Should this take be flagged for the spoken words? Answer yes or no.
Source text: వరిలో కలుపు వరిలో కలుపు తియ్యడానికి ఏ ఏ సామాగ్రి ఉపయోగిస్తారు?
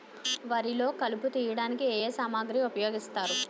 yes